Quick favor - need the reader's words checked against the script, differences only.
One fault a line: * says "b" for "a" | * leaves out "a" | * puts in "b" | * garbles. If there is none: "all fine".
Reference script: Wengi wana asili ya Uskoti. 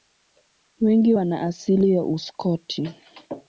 all fine